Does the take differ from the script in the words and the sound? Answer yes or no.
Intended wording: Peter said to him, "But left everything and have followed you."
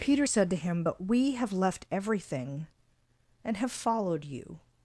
yes